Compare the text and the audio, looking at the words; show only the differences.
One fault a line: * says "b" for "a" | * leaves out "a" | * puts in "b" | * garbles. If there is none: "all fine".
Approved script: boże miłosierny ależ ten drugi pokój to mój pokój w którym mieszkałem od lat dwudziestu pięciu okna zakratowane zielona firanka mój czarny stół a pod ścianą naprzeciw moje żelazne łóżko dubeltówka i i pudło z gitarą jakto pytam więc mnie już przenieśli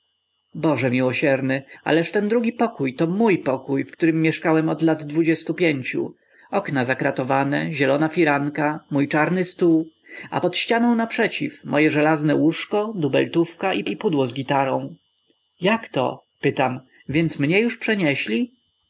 all fine